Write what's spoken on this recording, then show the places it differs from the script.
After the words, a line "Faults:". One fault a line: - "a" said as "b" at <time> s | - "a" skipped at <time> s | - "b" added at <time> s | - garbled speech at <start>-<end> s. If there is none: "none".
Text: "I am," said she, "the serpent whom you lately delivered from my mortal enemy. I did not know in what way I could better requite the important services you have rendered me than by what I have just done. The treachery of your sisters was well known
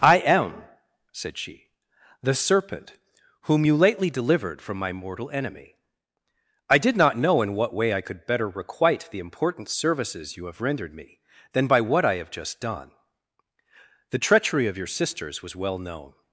"I am," said she, "the serpent whom you lately delivered from my mortal enemy. I did not know in what way I could better requite the important services you have rendered me than by what I have just done. The treachery of your sisters was well known
Faults:
none